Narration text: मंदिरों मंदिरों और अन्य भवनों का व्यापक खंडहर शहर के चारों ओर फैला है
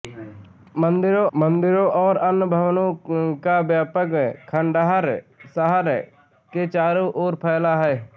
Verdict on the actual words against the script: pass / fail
pass